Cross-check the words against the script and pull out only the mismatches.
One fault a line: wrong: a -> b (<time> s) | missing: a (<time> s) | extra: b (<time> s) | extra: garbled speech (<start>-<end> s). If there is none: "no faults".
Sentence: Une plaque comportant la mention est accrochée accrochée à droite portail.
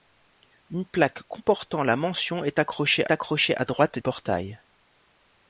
no faults